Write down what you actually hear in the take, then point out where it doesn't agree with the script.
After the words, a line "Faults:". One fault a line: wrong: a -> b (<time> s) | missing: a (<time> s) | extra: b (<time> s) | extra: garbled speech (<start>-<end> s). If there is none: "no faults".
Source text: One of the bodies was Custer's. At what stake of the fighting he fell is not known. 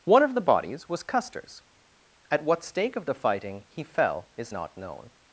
One of the bodies was Custer's. At what stake of the fighting he fell is not known.
Faults:
no faults